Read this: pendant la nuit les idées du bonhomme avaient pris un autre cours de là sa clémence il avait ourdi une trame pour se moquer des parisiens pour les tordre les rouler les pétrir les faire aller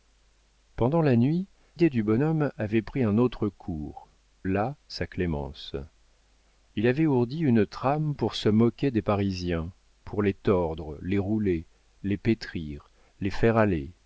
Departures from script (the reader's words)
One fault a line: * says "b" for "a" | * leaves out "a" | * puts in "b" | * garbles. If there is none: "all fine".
* leaves out "les"
* leaves out "de"